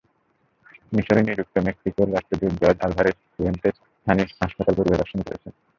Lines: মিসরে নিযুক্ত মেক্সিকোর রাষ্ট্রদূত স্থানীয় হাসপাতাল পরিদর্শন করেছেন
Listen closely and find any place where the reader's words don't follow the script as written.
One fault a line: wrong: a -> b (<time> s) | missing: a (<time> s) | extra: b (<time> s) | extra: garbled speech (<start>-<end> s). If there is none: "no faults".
extra: জর্জ আলভারেজ ফুয়েন্তেস (2.6 s)